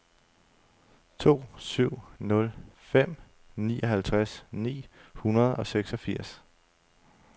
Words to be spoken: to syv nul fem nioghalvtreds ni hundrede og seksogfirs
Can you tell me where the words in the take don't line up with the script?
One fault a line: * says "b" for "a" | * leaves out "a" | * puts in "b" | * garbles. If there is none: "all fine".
all fine